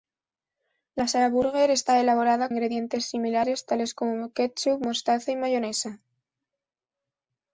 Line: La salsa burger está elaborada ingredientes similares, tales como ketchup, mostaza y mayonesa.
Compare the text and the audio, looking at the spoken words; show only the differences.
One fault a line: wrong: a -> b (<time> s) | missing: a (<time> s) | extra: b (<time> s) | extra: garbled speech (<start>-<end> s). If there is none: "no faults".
no faults